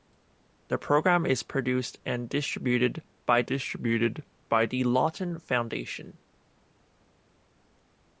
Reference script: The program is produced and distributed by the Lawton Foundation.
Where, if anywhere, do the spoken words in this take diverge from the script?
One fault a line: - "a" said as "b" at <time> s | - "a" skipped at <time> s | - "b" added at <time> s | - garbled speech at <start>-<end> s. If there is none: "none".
- "distributed by" added at 3.4 s